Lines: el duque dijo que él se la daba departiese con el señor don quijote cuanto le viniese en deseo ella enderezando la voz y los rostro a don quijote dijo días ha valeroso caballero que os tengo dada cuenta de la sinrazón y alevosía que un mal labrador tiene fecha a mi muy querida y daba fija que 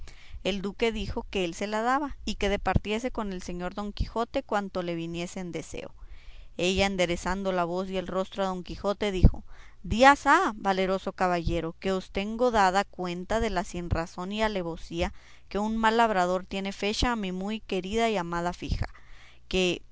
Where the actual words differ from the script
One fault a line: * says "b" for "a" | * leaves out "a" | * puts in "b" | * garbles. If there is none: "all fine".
* puts in "y que"
* says "el" for "los"
* says "amada" for "daba"